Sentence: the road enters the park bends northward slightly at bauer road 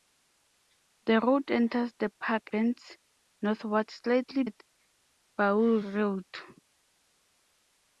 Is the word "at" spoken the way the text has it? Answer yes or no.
yes